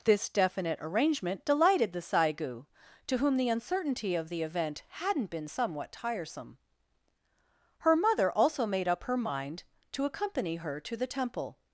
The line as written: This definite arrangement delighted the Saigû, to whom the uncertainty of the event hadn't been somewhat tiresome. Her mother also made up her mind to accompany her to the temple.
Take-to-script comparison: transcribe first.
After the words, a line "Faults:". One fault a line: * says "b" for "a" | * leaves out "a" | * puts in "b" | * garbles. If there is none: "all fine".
This definite arrangement delighted the Saigû, to whom the uncertainty of the event hadn't been somewhat tiresome. Her mother also made up her mind to accompany her to the temple.
Faults:
all fine